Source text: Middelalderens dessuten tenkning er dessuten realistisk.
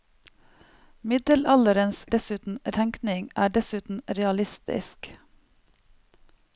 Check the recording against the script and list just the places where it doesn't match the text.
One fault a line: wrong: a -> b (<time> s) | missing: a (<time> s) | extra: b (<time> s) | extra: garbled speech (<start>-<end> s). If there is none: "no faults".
no faults